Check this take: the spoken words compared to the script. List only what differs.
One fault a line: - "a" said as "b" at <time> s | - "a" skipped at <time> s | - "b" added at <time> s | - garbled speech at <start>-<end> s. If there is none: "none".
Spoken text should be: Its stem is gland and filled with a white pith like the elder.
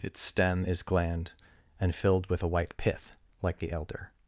none